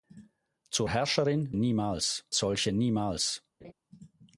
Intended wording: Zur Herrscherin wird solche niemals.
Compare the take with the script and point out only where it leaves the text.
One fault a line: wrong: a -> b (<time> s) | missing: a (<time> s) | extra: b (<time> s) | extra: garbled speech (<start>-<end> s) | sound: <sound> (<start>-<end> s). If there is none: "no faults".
wrong: wird -> niemals (1.5 s)
sound: laugh (3.6-3.7 s)